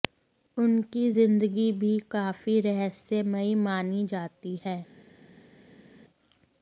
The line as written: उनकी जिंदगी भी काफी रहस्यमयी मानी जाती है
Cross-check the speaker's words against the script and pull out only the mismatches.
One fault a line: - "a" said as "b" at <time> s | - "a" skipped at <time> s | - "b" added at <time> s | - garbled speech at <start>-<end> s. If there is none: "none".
none